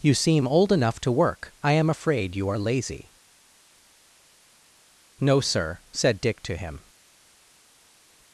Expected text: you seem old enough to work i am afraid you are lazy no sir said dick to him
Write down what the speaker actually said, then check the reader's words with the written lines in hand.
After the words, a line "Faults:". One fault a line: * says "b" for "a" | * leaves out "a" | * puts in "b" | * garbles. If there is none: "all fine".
you seem old enough to work i am afraid you are lazy no sir said dick to him
Faults:
all fine